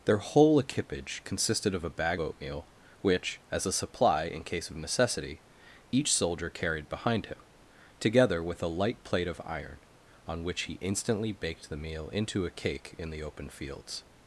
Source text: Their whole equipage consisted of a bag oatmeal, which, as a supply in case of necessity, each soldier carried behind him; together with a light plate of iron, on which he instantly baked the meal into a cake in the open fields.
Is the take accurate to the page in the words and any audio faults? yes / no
yes